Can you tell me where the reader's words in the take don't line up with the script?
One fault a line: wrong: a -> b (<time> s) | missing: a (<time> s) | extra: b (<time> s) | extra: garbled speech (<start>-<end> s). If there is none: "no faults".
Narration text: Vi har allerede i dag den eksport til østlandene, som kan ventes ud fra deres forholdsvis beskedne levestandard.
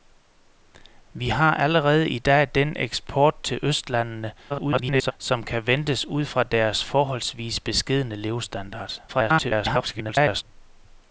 extra: garbled speech (4.5-5.1 s)
extra: garbled speech (9.1-10.4 s)